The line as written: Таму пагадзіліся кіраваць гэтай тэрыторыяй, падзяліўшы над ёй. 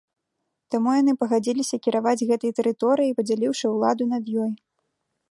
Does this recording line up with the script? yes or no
no